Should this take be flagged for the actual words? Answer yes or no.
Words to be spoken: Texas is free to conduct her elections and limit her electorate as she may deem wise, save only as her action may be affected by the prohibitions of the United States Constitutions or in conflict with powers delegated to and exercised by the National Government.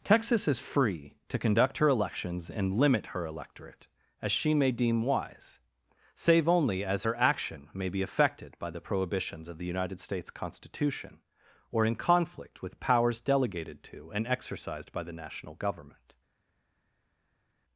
yes